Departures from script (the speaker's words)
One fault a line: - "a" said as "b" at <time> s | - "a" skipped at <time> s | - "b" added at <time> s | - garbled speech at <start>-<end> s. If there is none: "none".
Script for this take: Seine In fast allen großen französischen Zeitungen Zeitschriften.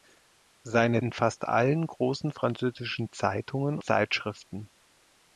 none